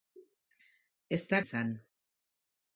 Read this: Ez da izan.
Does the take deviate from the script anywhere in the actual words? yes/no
no